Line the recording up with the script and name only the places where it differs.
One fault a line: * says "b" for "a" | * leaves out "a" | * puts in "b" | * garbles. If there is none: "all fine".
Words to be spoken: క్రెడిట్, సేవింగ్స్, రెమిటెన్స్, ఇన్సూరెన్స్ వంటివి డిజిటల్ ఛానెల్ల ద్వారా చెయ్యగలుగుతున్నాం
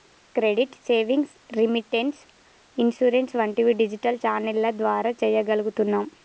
all fine